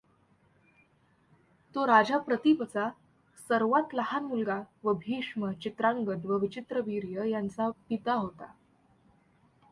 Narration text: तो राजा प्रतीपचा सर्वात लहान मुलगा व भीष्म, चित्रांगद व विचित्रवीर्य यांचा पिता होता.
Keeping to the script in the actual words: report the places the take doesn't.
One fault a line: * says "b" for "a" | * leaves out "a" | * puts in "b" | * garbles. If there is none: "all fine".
all fine